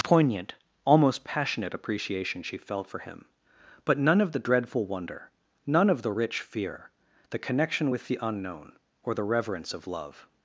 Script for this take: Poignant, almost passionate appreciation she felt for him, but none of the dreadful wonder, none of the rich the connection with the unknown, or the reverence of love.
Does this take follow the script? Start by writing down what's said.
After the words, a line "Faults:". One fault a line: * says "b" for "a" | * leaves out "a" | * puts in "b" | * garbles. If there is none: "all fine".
Poignant, almost passionate appreciation she felt for him, but none of the dreadful wonder, none of the rich fear, the connection with the unknown, or the reverence of love.
Faults:
* puts in "fear"